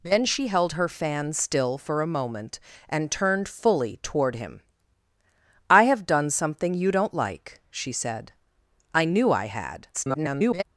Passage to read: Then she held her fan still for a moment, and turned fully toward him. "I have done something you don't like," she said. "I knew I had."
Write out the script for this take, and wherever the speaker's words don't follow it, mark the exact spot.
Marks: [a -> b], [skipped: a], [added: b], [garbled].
Then she held her fan still for a moment, and turned fully toward him. "I have done something you don't like," she said. "I knew I had." [garbled]